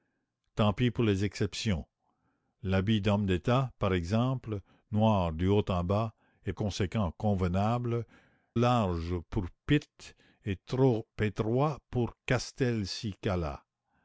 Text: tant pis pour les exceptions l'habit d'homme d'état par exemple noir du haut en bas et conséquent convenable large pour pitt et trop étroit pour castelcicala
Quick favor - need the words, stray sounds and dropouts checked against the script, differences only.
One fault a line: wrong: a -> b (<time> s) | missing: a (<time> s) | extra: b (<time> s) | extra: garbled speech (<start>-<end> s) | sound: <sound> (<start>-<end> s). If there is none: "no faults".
no faults